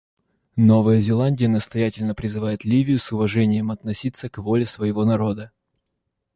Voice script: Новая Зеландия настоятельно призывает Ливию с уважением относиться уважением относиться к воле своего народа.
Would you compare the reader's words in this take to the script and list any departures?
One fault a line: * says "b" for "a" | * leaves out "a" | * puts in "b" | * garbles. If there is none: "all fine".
* leaves out "уважением относиться"